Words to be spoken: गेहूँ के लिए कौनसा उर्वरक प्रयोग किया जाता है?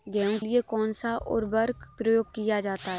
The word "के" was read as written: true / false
false